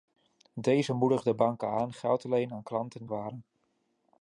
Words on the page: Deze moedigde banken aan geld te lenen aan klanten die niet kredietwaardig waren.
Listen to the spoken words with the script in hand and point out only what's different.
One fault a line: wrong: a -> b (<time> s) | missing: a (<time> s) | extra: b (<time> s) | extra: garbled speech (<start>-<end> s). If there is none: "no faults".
missing: die niet kredietwaardig (3.1 s)